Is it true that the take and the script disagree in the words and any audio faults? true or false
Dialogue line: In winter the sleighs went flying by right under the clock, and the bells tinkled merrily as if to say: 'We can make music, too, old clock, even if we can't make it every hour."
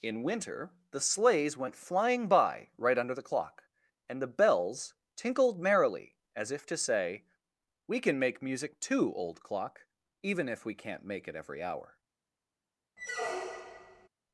true